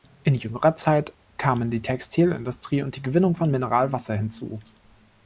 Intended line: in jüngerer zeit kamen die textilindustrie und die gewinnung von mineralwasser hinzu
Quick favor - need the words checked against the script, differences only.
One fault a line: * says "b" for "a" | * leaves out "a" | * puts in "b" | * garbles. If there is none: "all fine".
all fine